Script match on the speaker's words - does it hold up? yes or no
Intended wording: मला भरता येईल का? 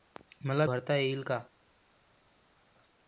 yes